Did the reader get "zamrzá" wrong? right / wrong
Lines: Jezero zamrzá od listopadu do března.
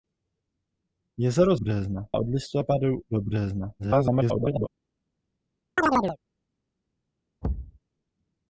wrong